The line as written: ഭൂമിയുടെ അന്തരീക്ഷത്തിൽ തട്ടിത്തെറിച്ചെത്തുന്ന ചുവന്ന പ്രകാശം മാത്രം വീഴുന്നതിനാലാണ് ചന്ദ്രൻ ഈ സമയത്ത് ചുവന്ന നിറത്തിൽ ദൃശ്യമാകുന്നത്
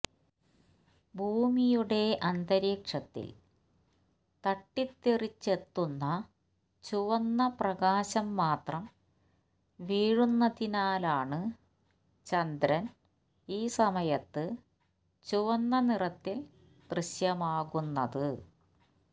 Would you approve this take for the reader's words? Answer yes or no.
yes